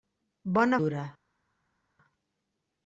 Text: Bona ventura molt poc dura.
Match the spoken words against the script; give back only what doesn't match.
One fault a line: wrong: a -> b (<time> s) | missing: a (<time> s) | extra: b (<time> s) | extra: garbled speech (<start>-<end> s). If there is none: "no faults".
missing: ventura molt poc (0.8 s)